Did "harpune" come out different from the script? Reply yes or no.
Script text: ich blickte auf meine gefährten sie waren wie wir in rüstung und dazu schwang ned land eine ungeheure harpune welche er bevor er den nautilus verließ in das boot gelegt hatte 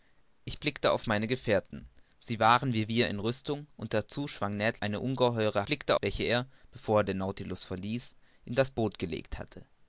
yes